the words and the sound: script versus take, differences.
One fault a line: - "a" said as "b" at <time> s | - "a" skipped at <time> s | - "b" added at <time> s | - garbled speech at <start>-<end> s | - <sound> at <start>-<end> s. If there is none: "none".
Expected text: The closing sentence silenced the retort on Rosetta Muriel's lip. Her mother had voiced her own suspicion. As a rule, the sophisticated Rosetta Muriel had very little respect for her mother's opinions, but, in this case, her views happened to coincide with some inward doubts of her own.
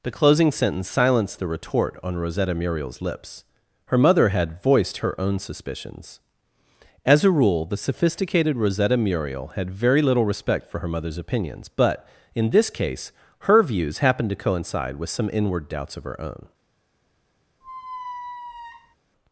- "lip" said as "lips" at 3.0 s
- "suspicion" said as "suspicions" at 5.4 s
- squeak at 17.6-19.0 s